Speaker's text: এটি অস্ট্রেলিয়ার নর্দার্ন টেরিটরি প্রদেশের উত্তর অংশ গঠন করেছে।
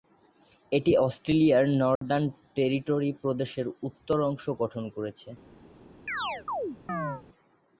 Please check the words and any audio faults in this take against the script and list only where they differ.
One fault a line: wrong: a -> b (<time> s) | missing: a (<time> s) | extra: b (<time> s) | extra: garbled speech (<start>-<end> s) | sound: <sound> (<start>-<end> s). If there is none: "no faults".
sound: dropout (2.0-2.0 s)
sound: chirp (6.1-7.2 s)